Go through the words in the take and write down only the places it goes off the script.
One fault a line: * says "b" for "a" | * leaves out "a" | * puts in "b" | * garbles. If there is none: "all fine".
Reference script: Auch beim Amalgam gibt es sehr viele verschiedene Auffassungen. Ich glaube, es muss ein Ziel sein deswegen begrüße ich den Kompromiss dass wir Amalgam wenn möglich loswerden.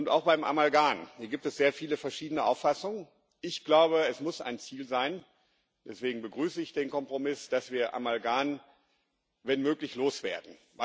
all fine